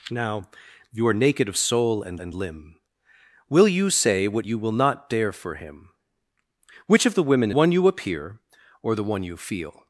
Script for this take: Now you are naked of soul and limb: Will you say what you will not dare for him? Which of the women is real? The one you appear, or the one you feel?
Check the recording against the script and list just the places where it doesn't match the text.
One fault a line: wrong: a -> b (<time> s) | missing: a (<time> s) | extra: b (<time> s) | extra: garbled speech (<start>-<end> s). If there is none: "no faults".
extra: and (2.2 s)
missing: is real The (7.5 s)